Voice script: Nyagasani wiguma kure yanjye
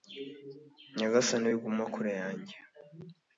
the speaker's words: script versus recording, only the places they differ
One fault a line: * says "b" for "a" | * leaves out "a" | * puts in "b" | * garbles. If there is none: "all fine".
all fine